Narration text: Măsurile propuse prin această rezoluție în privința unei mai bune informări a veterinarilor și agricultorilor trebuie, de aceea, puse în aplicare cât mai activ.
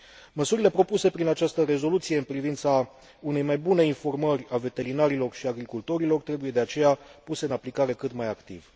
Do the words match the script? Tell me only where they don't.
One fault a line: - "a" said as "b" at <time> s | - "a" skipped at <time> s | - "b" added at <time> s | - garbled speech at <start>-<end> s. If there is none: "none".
none